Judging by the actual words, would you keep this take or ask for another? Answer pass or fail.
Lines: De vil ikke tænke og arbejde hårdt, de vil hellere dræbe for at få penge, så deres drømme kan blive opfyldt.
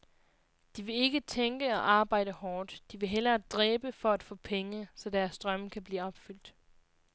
pass